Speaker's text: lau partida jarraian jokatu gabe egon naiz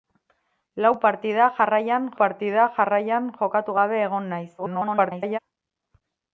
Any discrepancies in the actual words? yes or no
yes